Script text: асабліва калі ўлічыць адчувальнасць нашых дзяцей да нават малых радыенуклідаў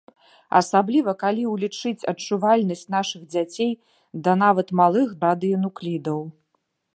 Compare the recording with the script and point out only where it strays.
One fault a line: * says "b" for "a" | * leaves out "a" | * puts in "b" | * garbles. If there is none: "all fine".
all fine